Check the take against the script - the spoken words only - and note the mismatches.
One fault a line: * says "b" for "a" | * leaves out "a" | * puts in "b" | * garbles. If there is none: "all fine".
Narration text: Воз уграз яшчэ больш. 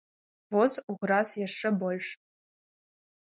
all fine